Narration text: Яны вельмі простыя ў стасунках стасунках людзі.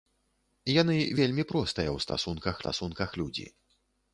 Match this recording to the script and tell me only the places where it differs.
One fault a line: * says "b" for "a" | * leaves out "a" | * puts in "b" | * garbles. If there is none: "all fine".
all fine